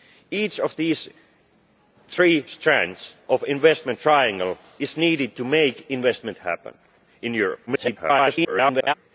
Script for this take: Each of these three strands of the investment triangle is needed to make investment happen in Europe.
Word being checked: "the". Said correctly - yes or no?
yes